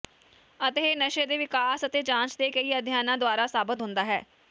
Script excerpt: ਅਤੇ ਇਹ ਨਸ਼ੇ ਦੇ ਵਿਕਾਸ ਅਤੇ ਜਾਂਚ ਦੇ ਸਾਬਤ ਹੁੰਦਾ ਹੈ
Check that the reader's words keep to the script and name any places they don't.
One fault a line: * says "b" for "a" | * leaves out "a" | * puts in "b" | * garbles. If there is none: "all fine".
* puts in "ਕਈ ਅਧਿਐਨਾਂ ਦੁਆਰਾ"